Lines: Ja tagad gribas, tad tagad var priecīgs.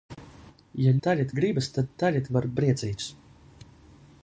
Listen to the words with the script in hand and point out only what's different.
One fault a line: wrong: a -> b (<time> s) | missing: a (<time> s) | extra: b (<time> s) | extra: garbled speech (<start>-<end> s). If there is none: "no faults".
no faults